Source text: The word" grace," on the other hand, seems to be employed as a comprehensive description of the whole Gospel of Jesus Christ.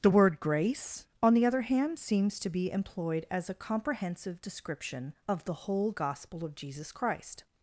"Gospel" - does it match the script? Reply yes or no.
yes